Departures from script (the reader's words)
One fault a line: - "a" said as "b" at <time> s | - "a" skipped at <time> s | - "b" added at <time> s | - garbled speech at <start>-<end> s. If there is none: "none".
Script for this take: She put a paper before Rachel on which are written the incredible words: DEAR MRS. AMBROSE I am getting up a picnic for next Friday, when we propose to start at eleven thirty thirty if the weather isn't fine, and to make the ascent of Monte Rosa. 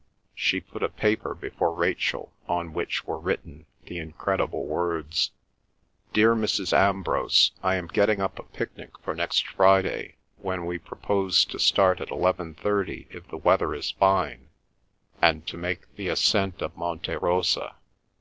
- "are" said as "were" at 3.0 s
- "thirty" skipped at 13.1 s
- "isn't" said as "is" at 13.7 s